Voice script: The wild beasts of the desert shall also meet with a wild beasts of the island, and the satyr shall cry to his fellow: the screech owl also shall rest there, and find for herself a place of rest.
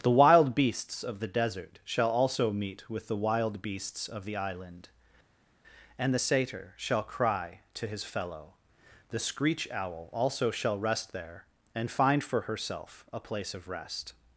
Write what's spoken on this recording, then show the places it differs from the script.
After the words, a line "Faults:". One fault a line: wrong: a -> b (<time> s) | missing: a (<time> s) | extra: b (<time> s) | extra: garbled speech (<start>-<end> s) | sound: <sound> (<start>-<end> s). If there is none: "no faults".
The wild beasts of the desert shall also meet with the wild beasts of the island, and the satyr shall cry to his fellow: the screech owl also shall rest there, and find for herself a place of rest.
Faults:
wrong: a -> the (3.1 s)